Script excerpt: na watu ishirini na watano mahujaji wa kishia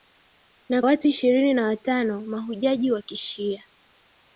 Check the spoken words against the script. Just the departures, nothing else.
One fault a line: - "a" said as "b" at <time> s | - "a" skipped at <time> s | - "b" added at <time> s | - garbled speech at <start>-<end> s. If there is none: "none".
none